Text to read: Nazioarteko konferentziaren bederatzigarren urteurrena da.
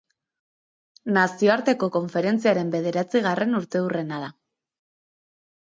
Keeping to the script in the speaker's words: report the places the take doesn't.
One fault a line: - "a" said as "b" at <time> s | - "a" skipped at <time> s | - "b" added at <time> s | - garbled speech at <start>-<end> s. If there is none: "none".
none